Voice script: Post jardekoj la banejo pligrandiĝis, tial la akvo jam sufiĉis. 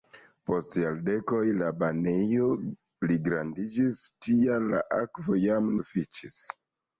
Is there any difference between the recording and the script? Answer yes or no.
no